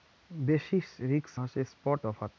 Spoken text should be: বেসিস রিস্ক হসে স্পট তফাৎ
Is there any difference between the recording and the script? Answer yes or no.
no